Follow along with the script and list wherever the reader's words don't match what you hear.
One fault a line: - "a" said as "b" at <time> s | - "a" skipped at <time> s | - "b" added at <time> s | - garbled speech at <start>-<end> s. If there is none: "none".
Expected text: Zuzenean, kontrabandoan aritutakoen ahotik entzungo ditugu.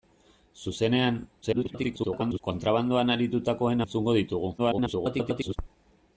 - garbled speech at 1.4-2.4 s
- "ahotik" skipped at 3.8 s
- garbled speech at 4.6-5.6 s